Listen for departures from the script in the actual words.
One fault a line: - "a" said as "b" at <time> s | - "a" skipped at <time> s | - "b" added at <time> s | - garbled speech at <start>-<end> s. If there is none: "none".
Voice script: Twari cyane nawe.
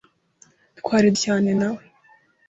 none